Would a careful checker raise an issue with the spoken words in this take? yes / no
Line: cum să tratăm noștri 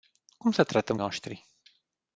no